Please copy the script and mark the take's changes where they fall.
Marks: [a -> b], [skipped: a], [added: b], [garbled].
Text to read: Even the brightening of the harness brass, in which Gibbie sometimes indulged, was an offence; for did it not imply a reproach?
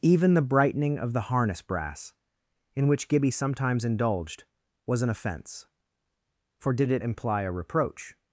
Even the brightening of the harness brass, in which Gibbie sometimes indulged, was an offence; for did it [skipped: not] imply a reproach?